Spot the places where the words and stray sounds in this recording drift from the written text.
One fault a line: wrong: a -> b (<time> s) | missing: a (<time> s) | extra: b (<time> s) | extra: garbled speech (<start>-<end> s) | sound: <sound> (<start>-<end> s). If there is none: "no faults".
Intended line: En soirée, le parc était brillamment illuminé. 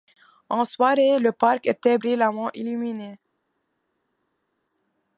no faults